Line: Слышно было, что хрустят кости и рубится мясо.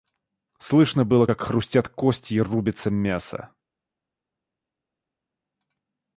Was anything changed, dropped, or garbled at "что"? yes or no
yes